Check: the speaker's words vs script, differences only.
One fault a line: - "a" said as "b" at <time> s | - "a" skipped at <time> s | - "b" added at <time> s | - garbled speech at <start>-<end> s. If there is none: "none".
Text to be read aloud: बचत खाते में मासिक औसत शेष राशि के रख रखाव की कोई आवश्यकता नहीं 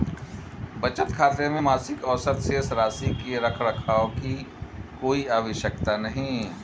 none